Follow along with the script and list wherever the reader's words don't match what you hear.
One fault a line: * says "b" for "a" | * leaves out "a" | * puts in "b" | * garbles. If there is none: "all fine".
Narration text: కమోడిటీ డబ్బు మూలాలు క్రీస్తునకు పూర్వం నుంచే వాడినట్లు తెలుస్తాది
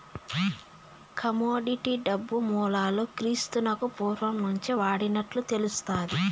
all fine